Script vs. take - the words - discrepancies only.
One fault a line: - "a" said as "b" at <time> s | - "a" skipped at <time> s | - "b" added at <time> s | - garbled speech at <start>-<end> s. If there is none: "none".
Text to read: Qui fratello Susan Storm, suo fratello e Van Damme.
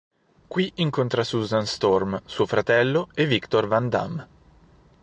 - "fratello" said as "incontra" at 0.8 s
- "Victor" added at 3.2 s